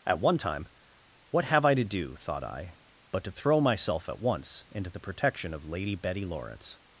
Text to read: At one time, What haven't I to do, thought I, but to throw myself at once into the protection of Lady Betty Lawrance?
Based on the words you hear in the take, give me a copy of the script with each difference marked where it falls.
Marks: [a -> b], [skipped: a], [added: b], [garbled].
At one time, What [haven't -> have] I to do, thought I, but to throw myself at once into the protection of Lady Betty Lawrance?